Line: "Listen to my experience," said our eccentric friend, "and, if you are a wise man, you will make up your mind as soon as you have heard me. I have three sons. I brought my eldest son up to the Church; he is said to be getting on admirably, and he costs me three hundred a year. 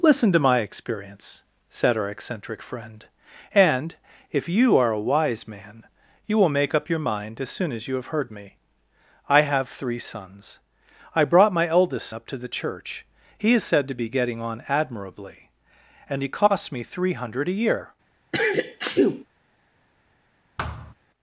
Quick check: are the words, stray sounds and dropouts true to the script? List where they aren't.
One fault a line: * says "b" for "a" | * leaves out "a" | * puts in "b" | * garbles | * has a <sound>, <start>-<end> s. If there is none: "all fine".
* leaves out "son"
* has a sneeze, 18.3-19.3 s
* has a thud, 20.6-20.9 s